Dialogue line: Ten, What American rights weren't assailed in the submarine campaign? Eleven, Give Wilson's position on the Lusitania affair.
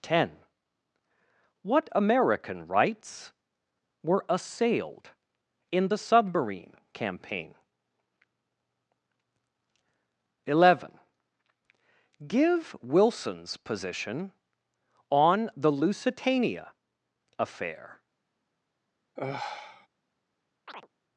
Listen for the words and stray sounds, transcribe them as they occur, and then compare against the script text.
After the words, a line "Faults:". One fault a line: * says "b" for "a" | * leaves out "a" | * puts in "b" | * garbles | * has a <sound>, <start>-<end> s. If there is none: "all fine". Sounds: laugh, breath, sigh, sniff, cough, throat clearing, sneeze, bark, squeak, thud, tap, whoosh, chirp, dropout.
Ten, What American rights were assailed in the submarine campaign? Eleven, Give Wilson's position on the Lusitania affair.
Faults:
* says "were" for "weren't"
* has a sigh, 19.2-19.9 s
* has a chirp, 20.7-20.9 s